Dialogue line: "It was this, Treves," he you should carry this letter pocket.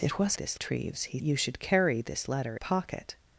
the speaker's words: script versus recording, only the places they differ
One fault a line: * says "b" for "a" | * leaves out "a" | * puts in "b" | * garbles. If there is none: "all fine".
all fine